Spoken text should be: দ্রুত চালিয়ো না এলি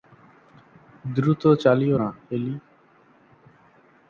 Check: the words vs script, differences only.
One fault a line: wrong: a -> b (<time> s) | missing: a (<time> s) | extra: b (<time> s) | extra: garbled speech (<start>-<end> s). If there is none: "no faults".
no faults